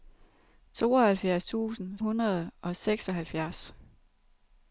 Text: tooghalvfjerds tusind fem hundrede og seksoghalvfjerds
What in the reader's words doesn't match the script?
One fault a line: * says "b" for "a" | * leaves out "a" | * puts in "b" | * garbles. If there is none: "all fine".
* leaves out "fem"